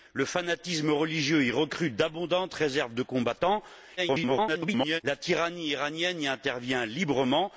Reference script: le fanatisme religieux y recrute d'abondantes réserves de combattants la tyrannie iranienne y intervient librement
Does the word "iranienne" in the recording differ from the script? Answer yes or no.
no